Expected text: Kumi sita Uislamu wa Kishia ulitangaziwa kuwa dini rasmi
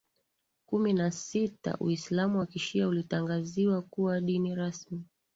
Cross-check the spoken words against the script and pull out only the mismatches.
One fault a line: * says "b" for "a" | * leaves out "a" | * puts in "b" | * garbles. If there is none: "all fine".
* puts in "na"